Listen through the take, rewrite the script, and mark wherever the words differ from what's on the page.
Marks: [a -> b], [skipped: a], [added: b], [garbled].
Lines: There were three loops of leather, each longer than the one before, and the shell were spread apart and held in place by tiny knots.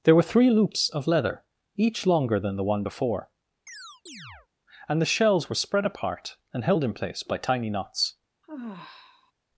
There were three loops of leather, each longer than the one before, and the [shell -> shells] were spread apart and held in place by tiny knots.